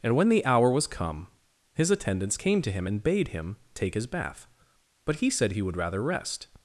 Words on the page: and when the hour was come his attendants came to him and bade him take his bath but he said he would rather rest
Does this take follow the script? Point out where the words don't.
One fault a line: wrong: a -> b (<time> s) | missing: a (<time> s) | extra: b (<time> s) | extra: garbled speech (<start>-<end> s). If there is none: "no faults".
no faults